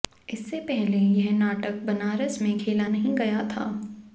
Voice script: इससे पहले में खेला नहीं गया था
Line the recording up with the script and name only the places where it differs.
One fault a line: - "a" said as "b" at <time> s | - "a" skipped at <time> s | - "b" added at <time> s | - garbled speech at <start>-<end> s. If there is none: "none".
- "यह नाटक बनारस" added at 1.0 s